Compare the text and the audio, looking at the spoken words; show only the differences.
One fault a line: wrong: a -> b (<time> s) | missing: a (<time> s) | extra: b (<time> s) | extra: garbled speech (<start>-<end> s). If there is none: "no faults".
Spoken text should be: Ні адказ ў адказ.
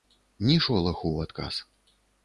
wrong: адказ -> шолаху (0.7 s)